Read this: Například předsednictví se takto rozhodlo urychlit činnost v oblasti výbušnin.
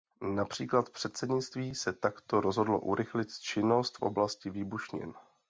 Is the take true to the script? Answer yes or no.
yes